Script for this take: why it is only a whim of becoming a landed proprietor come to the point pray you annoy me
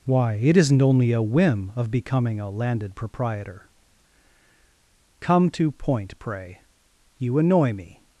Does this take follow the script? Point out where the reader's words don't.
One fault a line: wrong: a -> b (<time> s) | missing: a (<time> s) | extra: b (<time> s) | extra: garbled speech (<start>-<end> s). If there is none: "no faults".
wrong: is -> isn't (0.6 s)
missing: the (5.7 s)